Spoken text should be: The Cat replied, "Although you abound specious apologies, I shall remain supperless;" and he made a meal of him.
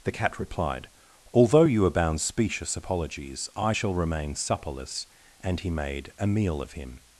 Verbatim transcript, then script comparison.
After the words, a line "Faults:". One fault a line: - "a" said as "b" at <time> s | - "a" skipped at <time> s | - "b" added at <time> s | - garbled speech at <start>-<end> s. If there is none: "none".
The Cat replied, "Although you abound specious apologies, I shall remain supperless;" and he made a meal of him.
Faults:
none